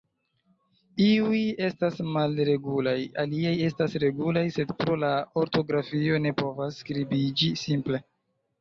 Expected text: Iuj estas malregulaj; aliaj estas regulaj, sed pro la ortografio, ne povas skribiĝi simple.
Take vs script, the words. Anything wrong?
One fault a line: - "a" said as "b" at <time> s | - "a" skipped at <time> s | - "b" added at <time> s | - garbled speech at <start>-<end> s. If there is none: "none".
none